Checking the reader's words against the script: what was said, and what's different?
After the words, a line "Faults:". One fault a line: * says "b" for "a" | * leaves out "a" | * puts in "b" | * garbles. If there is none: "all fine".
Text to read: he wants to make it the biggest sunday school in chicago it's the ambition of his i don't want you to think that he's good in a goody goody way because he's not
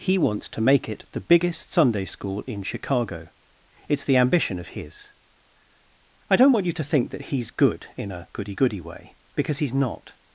he wants to make it the biggest sunday school in chicago it's the ambition of his i don't want you to think that he's good in a goody goody way because he's not
Faults:
all fine